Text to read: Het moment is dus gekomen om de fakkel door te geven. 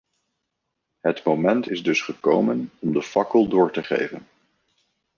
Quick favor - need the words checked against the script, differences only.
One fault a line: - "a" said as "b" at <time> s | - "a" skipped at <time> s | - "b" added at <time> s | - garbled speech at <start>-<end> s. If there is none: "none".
none